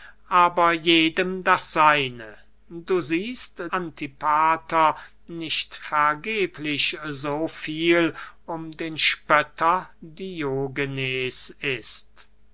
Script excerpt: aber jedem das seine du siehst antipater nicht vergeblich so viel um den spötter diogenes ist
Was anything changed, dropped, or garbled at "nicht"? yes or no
no